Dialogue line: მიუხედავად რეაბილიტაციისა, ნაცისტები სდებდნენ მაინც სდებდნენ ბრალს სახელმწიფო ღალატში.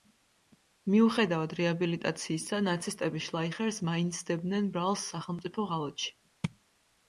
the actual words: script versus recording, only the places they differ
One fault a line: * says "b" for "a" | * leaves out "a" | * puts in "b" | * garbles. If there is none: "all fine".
* says "შლაიხერს" for "სდებდნენ"